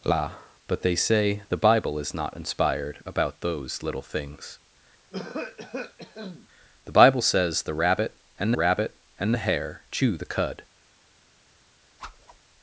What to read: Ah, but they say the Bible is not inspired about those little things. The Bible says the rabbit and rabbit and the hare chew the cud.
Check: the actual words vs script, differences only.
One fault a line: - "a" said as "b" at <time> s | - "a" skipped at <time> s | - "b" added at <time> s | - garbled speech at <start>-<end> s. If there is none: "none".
none